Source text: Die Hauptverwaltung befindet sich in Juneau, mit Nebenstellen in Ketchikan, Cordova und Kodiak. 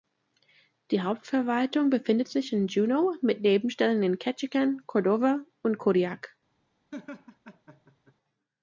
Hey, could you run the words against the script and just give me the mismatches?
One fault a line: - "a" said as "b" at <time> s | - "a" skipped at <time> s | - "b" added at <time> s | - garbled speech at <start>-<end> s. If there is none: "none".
none